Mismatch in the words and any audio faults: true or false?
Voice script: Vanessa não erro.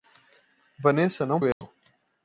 true